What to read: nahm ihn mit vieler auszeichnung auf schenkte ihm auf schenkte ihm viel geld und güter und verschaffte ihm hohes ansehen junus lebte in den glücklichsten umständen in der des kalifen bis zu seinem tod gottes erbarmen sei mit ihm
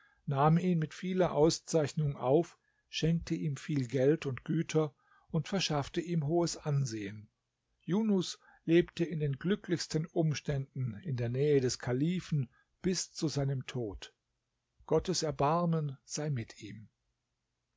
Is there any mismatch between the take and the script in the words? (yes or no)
yes